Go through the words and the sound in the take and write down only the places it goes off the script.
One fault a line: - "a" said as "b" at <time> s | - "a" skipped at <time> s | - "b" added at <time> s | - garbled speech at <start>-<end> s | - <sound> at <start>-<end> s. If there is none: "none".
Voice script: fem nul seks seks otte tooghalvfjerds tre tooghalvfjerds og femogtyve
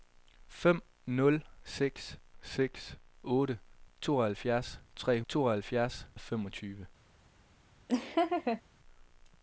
- laugh at 7.9-8.6 s